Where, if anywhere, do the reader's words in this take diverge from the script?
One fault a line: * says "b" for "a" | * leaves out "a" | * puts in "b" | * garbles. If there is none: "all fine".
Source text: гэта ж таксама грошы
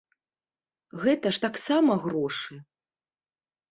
all fine